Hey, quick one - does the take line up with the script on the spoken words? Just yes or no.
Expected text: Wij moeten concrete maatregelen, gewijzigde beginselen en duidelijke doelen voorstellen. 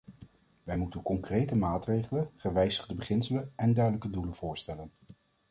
yes